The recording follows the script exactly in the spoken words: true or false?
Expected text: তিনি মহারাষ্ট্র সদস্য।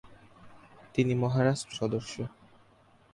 true